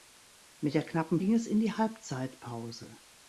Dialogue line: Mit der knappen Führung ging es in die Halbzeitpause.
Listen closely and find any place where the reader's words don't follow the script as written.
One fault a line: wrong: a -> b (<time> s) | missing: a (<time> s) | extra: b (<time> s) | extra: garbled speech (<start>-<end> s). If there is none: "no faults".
missing: Führung (1.2 s)